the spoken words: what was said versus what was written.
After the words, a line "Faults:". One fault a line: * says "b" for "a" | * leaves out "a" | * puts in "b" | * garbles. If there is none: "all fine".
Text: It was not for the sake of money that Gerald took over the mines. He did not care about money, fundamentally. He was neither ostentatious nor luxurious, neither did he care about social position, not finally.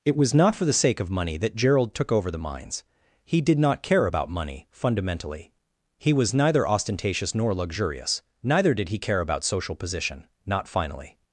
It was not for the sake of money that Gerald took over the mines. He did not care about money, fundamentally. He was neither ostentatious nor luxurious, neither did he care about social position, not finally.
Faults:
all fine